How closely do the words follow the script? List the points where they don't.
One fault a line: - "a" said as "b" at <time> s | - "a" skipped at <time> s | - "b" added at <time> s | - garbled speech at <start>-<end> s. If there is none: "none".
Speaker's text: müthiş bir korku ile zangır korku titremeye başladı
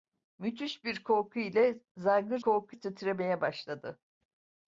none